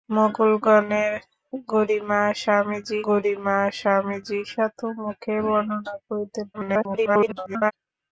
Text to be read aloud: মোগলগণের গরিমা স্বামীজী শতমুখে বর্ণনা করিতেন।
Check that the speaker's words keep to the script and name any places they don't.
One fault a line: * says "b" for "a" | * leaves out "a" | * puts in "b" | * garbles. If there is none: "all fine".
* puts in "গরিমা স্বামীজী"
* garbles